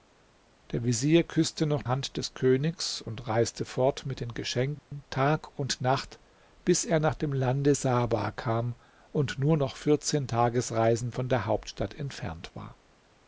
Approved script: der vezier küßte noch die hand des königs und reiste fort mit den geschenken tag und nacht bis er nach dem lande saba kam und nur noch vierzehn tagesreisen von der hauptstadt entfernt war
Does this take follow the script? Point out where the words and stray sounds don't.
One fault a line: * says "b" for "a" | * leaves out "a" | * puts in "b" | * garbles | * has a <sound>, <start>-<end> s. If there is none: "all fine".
* leaves out "die"
* has a dropout, 4.8-4.9 s